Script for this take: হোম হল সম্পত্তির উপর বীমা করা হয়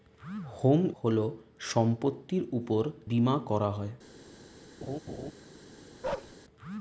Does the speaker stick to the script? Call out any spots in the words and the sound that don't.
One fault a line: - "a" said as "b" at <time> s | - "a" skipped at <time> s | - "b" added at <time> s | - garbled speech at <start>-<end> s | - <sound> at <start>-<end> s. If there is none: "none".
- laugh at 4.8-5.3 s
- bark at 6.0-6.4 s